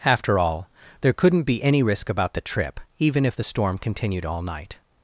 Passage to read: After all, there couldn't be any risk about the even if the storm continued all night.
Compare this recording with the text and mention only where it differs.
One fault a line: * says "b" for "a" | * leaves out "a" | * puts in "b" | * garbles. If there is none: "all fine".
* puts in "trip"